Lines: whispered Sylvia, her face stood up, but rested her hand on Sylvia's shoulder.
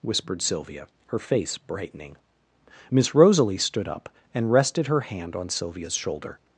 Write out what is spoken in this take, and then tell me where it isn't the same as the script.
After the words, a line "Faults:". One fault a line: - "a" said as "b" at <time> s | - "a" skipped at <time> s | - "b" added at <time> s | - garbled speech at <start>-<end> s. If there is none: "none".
whispered Sylvia, her face brightening. Miss Rosalie stood up, and rested her hand on Sylvia's shoulder.
Faults:
- "brightening Miss Rosalie" added at 1.6 s
- "but" said as "and" at 4.3 s